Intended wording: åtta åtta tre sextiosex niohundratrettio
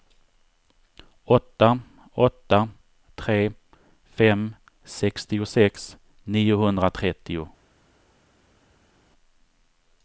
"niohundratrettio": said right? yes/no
yes